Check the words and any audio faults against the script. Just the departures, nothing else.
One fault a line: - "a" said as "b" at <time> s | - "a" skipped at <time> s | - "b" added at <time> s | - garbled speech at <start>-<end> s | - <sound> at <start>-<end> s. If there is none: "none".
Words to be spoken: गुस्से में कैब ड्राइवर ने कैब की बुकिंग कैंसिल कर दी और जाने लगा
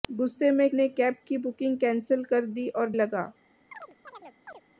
- "कैब ड्राइवर" skipped at 0.7 s
- "जाने" skipped at 2.9 s
- chirp at 3.7-4.6 s